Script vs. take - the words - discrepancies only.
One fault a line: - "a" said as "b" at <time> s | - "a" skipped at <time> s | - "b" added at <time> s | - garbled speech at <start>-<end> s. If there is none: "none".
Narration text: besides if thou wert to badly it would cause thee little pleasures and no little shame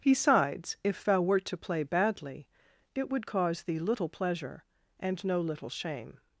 - "play" added at 1.6 s
- "pleasures" said as "pleasure" at 4.1 s